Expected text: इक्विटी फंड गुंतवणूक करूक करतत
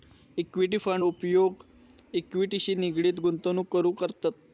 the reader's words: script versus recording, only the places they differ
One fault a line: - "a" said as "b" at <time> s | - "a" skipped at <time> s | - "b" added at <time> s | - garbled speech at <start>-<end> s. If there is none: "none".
- "उपयोग इक्विटीशी निगडीत" added at 1.0 s